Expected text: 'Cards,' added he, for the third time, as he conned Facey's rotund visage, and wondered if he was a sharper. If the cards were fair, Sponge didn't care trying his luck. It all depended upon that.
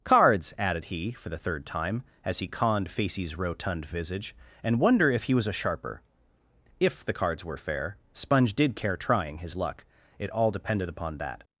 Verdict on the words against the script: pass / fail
fail